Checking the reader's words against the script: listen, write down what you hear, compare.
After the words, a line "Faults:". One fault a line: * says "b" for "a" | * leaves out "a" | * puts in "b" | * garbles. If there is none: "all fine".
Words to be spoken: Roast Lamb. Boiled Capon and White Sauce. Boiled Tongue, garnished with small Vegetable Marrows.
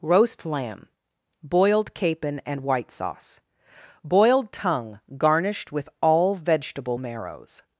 Roast Lamb. Boiled Capon and White Sauce. Boiled Tongue, garnished with all Vegetable Marrows.
Faults:
* says "all" for "small"